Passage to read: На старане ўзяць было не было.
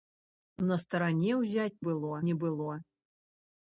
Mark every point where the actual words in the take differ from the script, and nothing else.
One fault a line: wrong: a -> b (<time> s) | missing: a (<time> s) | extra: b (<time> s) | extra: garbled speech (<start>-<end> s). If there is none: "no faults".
no faults